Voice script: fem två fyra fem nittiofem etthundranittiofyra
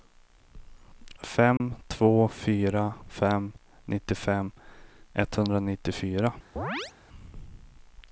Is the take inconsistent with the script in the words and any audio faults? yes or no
yes